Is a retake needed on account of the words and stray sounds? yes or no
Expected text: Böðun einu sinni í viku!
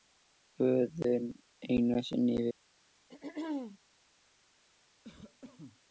yes